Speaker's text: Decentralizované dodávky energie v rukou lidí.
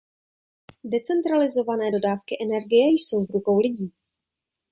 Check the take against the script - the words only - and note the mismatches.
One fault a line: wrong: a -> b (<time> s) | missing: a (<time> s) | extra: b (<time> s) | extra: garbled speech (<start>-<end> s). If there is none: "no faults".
extra: jsou (2.9 s)